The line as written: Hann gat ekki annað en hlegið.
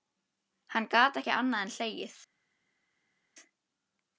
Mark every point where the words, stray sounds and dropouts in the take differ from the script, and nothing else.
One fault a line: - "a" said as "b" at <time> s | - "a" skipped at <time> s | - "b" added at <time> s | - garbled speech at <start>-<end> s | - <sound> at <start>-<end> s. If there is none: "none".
none